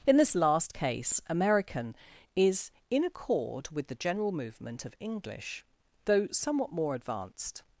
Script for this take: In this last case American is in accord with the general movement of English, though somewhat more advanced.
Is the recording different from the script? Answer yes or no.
no